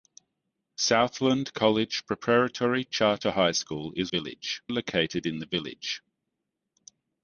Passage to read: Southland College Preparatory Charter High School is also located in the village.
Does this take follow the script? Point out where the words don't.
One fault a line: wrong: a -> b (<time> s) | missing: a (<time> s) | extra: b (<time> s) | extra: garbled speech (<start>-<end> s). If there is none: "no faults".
wrong: also -> village (4.1 s)